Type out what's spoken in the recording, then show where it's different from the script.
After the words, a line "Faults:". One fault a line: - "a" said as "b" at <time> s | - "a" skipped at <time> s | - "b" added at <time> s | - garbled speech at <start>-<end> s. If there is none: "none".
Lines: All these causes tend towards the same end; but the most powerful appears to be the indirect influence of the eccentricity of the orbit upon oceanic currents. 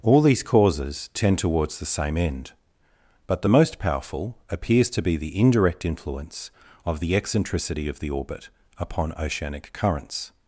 All these causes tend towards the same end; but the most powerful appears to be the indirect influence of the eccentricity of the orbit upon oceanic currents.
Faults:
none